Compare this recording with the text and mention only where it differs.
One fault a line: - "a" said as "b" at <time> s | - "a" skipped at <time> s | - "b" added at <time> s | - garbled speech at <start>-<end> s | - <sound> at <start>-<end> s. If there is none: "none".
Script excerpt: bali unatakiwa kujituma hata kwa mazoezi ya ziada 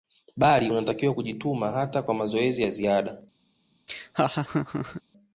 - laugh at 3.9-5.0 s